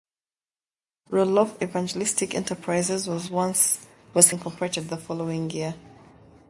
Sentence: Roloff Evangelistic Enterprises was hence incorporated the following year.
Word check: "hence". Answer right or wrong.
wrong